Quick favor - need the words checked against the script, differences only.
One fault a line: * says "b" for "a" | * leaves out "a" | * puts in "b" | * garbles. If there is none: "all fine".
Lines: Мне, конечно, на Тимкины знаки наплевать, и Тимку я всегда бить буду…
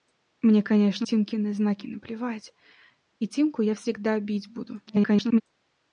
* leaves out "на"
* garbles